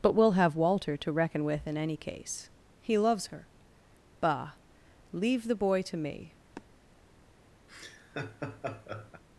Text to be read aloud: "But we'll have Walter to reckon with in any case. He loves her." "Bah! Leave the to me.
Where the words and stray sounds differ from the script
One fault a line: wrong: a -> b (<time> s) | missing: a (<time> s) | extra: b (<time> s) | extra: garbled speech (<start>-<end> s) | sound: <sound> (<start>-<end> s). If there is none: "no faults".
extra: boy (5.5 s)
sound: sniff (6.5-6.7 s)
sound: laugh (7.7-9.2 s)